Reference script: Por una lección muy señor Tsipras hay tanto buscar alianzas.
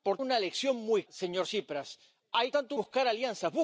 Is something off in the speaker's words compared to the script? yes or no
no